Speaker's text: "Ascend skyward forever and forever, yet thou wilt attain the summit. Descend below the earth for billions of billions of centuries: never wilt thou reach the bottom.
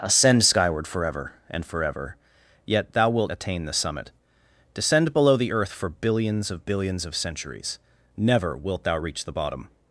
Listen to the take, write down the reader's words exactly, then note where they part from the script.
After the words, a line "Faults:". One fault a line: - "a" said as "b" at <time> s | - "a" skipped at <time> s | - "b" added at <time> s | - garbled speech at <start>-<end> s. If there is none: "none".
"Ascend skyward forever and forever, yet thou wilt attain the summit. Descend below the earth for billions of billions of centuries: never wilt thou reach the bottom.
Faults:
none